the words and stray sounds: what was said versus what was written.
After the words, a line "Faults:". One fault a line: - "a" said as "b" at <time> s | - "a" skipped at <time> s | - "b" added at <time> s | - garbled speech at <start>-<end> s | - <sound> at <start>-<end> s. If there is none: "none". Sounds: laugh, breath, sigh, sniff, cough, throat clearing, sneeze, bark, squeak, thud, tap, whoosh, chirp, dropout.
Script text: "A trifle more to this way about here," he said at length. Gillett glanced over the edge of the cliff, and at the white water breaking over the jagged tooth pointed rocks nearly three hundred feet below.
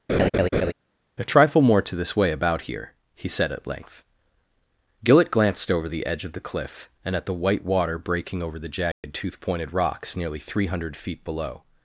"A trifle more to this way about here," he said at length. Gillett glanced over the edge of the cliff, and at the white water breaking over the jagged tooth pointed rocks nearly three hundred feet below.
Faults:
- laugh at 0.1-0.7 s
- dropout at 8.9-9.0 s